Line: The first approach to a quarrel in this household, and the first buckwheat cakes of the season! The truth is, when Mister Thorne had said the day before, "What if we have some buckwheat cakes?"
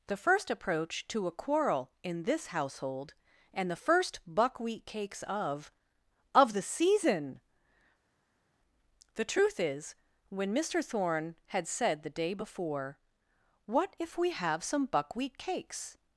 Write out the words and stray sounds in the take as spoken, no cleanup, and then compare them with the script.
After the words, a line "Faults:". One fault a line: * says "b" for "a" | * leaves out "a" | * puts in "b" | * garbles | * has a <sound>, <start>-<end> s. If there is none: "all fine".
The first approach to a quarrel in this household, and the first buckwheat cakes of of the season! The truth is, when Mister Thorne had said the day before, "What if we have some buckwheat cakes?"
Faults:
* puts in "of"